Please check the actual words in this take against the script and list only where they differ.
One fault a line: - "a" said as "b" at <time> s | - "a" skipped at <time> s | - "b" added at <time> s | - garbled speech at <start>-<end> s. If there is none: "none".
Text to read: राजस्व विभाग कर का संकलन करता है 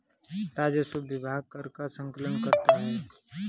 none